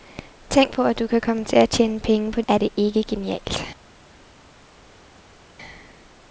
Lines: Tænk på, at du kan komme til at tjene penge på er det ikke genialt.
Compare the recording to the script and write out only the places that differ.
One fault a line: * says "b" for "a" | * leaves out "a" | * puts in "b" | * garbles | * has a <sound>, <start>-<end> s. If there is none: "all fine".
all fine